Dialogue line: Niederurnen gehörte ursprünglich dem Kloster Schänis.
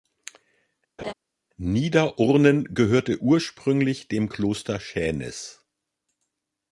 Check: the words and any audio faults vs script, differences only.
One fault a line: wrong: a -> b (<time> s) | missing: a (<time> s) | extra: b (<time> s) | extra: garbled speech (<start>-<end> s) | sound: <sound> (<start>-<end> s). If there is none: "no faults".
sound: laugh (1.0-1.1 s)